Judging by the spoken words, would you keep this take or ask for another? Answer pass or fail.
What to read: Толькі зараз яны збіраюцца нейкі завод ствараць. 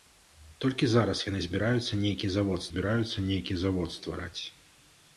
fail